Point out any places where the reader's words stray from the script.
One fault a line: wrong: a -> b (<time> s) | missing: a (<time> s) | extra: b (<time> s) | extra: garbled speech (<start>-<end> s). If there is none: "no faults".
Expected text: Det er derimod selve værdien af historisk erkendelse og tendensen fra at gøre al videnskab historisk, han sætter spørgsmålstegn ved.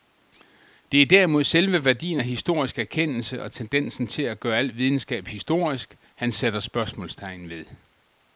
wrong: fra -> til (4.1 s)